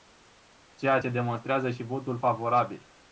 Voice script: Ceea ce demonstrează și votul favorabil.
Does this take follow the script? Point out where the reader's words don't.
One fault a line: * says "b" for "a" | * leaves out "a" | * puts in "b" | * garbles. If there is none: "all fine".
all fine